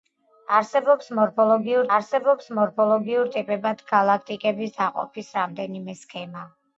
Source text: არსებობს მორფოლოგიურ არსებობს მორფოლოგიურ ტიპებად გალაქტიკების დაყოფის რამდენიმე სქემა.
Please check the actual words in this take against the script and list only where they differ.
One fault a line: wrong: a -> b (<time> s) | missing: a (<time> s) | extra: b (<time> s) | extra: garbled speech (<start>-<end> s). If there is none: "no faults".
no faults